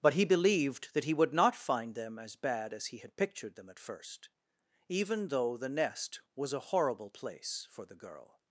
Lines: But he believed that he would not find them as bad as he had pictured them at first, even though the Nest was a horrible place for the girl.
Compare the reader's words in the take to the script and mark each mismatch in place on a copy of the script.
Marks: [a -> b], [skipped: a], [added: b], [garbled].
But he believed that he would not find them as bad as he had pictured them at first, even though the Nest was a horrible place for the girl.